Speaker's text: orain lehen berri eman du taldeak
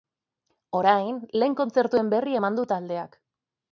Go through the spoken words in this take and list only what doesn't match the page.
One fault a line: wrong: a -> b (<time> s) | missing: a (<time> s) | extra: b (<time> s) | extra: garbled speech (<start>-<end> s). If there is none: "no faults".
extra: kontzertuen (1.6 s)